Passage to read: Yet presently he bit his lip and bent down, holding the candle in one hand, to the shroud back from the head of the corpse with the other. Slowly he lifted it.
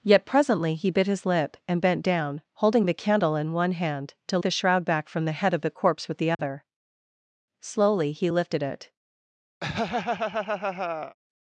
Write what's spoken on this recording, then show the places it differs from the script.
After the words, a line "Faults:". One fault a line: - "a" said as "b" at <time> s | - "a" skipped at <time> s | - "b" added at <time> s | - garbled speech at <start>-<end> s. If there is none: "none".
Yet presently he bit his lip and bent down, holding the candle in one hand, to the shroud back from the head of the corpse with the other. Slowly he lifted it.
Faults:
none